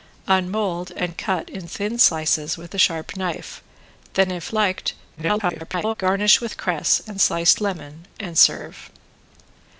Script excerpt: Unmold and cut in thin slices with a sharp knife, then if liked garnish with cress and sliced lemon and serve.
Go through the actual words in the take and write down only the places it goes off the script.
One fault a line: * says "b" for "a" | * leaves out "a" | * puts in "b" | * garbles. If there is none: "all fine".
* garbles